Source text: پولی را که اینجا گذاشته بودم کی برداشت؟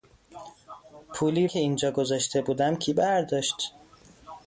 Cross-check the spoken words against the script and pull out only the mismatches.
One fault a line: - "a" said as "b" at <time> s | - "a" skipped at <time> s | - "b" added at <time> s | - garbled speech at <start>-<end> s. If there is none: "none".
- "را" skipped at 1.5 s